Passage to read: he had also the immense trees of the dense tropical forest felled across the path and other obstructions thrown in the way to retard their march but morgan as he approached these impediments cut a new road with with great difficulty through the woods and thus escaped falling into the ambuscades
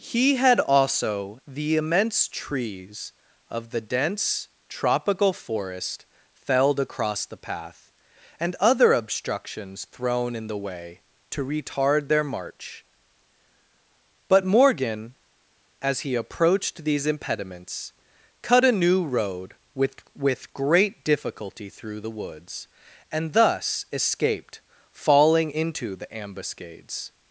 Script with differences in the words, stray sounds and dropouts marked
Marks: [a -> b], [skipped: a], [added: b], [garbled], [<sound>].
he had also the immense trees of the dense tropical forest felled across the path and other obstructions thrown in the way to retard their march but morgan as he approached these impediments cut a new road with with great difficulty through the woods and thus escaped falling into the ambuscades